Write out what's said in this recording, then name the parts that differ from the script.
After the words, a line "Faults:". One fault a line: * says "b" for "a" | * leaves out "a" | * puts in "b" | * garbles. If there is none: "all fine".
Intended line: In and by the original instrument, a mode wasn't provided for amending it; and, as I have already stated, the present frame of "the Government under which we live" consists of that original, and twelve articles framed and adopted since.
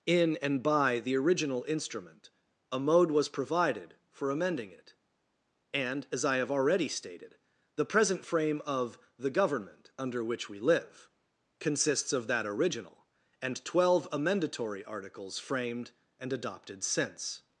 In and by the original instrument, a mode was provided for amending it; and, as I have already stated, the present frame of "the Government under which we live" consists of that original, and twelve amendatory articles framed and adopted since.
Faults:
* says "was" for "wasn't"
* puts in "amendatory"